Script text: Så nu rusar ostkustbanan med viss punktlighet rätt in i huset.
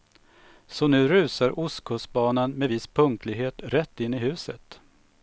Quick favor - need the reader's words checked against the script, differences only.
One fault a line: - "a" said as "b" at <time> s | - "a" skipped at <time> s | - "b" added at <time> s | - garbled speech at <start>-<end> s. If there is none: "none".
none